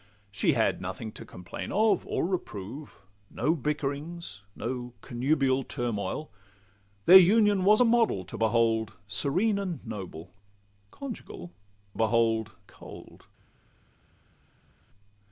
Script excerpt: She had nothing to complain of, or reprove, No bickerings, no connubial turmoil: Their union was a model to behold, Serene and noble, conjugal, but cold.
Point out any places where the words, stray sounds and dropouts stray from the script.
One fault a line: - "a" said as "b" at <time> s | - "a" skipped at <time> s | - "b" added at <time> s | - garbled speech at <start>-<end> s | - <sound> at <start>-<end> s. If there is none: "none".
- "but" said as "behold" at 12.0 s